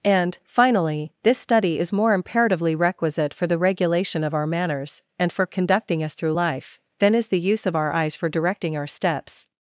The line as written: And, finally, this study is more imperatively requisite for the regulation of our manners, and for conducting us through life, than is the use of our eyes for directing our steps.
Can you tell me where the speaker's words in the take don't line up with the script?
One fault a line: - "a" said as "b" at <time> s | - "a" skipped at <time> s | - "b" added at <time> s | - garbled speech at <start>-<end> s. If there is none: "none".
none